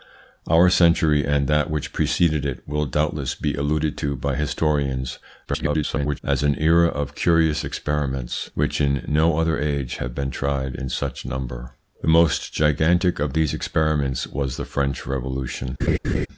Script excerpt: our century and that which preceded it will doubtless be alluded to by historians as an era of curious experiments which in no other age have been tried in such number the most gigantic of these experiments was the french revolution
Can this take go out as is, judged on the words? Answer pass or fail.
fail